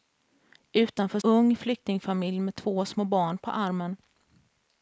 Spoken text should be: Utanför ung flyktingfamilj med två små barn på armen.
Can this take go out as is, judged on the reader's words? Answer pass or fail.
pass